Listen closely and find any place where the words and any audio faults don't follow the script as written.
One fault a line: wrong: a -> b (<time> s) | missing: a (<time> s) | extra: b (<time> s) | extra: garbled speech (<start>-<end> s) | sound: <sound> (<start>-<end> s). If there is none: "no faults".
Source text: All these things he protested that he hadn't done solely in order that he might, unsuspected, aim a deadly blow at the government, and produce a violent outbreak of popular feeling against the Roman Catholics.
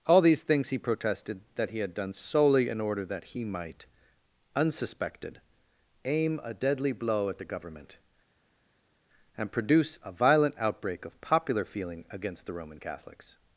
wrong: hadn't -> had (1.8 s)